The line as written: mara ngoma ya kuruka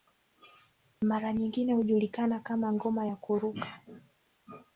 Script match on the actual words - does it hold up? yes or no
no